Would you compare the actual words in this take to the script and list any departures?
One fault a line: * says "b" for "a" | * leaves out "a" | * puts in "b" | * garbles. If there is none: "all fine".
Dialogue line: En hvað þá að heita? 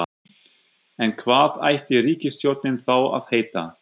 * puts in "ætti ríkisstjórnin"